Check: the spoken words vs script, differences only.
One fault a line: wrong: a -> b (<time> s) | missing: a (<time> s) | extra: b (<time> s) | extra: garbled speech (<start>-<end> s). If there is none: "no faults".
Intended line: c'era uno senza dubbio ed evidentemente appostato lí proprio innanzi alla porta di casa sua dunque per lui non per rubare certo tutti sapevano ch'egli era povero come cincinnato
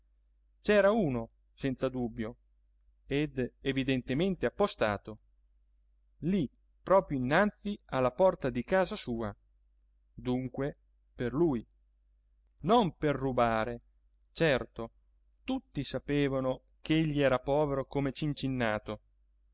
no faults